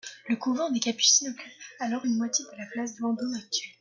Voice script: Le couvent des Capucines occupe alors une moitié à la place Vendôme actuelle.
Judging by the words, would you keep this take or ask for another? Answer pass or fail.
fail